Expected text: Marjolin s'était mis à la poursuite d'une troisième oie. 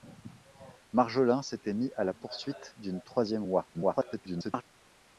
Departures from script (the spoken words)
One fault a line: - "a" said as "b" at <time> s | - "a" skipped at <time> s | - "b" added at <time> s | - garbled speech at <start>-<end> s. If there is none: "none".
- garbled speech at 3.7-4.6 s